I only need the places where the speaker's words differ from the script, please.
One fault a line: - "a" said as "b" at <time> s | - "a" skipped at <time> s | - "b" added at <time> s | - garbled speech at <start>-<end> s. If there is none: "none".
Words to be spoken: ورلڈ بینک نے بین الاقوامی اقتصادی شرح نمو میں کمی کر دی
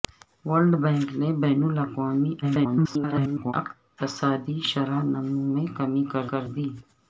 - garbled speech at 2.4-3.5 s
- "کر" added at 6.3 s